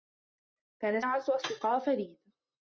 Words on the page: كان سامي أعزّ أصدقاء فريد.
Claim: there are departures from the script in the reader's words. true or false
true